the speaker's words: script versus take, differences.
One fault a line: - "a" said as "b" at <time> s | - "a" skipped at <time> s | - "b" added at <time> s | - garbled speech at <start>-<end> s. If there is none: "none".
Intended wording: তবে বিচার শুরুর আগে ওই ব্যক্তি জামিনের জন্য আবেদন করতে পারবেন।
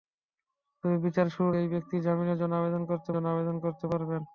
- "আগে" skipped at 1.6 s
- "জন্য আবেদন করতে" added at 3.1 s